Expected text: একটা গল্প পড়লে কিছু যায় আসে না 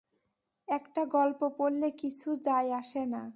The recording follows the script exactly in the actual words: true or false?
true